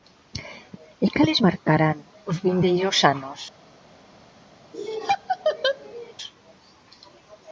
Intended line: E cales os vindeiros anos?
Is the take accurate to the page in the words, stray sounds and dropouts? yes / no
no